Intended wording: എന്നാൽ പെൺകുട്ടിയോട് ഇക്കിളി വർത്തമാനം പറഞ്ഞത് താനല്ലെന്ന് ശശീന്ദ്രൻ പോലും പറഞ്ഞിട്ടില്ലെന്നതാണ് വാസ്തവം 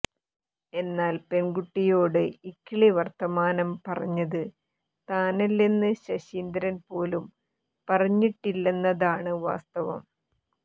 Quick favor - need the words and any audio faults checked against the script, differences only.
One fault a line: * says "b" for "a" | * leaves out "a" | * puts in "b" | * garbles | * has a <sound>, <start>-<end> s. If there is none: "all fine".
all fine